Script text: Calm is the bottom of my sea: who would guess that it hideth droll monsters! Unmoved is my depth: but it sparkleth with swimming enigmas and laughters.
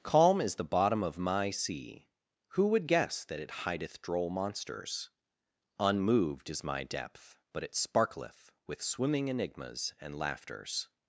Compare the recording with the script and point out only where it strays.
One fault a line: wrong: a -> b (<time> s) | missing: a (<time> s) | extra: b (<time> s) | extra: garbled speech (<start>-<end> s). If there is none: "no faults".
no faults